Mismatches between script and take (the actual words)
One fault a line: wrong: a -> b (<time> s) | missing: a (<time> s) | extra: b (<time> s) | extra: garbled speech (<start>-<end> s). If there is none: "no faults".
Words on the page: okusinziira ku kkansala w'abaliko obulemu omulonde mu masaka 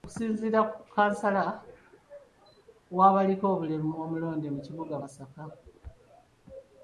extra: kibuga (4.7 s)